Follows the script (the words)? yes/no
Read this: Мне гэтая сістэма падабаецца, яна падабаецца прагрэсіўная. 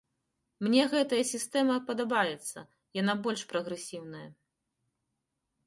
no